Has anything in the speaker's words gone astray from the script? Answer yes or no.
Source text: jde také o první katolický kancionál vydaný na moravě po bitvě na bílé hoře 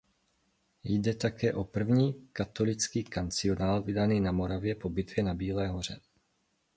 no